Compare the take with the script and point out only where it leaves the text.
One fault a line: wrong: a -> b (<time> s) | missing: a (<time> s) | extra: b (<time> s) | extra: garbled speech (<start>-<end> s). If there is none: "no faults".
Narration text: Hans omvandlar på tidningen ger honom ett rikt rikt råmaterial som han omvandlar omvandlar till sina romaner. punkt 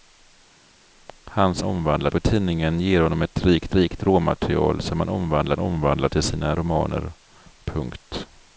no faults